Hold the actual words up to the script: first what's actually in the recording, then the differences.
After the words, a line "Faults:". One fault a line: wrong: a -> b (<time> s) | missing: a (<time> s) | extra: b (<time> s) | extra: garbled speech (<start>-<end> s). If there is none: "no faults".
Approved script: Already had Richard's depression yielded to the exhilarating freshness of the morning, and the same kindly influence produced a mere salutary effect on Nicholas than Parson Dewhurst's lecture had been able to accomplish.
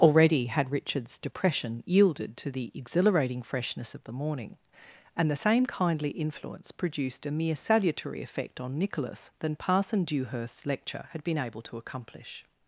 Already had Richard's depression yielded to the exhilarating freshness of the morning, and the same kindly influence produced a mere salutary effect on Nicholas than Parson Dewhurst's lecture had been able to accomplish.
Faults:
no faults